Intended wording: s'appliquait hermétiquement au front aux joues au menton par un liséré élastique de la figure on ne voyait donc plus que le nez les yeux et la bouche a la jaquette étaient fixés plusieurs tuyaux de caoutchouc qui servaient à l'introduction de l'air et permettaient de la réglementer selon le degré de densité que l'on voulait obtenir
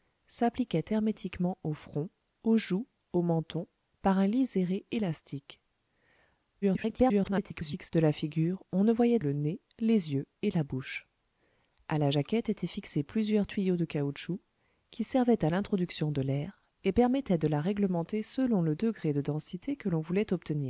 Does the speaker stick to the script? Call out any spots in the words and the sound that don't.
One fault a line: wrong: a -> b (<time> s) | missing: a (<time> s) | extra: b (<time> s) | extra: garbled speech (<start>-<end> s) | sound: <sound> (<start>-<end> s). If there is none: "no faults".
extra: garbled speech (6.6-7.9 s)
missing: donc plus que (9.2 s)